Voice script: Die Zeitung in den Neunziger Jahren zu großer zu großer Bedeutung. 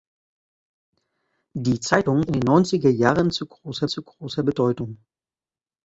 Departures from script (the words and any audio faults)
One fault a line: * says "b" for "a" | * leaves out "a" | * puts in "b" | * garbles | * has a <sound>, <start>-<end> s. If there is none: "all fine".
all fine